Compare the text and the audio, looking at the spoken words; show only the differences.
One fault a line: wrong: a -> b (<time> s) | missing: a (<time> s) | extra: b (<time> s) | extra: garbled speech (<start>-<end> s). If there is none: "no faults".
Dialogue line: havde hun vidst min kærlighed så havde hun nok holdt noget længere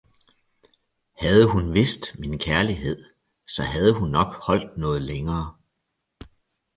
no faults